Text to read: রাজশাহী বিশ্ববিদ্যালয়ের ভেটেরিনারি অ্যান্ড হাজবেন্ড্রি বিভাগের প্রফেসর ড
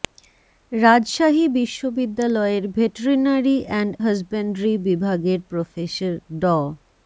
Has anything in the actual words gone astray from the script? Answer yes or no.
no